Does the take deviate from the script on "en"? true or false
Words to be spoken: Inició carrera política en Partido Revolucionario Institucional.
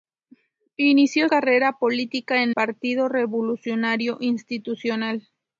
false